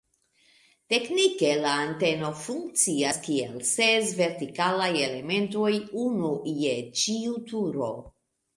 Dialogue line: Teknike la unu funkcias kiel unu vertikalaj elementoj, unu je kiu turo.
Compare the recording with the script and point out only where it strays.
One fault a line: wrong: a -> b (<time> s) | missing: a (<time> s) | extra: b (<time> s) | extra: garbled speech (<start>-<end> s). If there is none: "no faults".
wrong: unu -> anteno (1.8 s)
wrong: unu -> ses (3.7 s)
wrong: kiu -> ĉiu (7.0 s)